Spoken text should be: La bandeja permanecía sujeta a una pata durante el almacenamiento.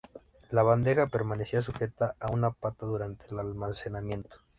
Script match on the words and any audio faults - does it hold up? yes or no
yes